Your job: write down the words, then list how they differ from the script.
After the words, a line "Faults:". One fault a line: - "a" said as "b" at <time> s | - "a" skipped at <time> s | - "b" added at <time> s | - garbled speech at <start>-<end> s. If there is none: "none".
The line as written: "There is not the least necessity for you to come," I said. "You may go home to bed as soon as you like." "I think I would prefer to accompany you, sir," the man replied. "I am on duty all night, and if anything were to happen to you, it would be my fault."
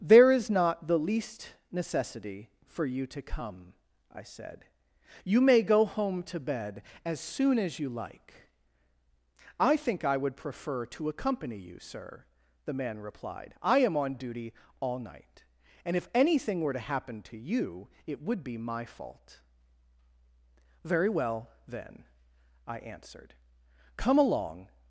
"There is not the least necessity for you to come," I said. "You may go home to bed as soon as you like." "I think I would prefer to accompany you, sir," the man replied. "I am on duty all night, and if anything were to happen to you, it would be my fault." "Very well, then," I answered, "come along
Faults:
- "Very well then I answered come along" added at 20.8 s